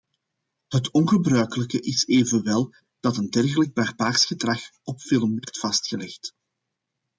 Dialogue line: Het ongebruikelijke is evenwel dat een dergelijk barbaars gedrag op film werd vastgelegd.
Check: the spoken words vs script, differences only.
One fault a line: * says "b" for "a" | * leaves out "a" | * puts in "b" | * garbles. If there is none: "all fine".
all fine